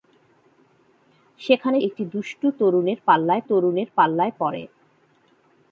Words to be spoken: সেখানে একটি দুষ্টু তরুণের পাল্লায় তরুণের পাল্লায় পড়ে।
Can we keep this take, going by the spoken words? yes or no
yes